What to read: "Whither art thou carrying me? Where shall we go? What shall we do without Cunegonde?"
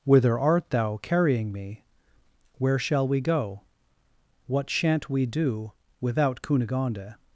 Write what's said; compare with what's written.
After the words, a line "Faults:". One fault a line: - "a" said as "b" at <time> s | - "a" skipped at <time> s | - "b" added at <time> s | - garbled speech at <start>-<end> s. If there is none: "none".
"Whither art thou carrying me? Where shall we go? What shan't we do without Cunegonde?"
Faults:
- "shall" said as "shan't" at 4.7 s